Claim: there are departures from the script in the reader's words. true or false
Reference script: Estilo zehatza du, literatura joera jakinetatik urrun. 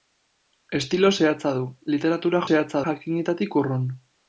true